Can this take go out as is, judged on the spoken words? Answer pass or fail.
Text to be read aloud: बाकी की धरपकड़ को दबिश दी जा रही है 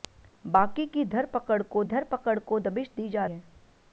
fail